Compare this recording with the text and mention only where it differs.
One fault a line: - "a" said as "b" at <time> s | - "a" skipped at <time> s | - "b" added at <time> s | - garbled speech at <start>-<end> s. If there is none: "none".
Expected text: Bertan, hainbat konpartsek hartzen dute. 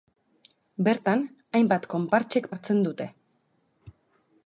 none